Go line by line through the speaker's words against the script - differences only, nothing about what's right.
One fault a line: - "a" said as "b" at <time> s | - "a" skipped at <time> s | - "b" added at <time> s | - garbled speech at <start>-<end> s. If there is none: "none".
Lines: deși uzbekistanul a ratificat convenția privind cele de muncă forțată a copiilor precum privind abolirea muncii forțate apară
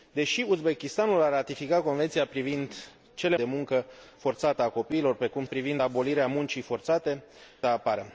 none